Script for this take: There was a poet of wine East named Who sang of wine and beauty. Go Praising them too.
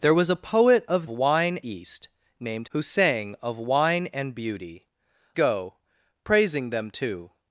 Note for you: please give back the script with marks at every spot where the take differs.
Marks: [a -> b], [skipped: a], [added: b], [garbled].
There was a poet of wine East named Who sang of wine and beauty. Go Praising them too.